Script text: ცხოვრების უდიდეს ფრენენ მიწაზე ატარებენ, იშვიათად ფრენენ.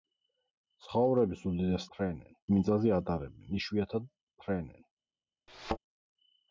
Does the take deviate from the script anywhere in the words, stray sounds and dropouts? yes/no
yes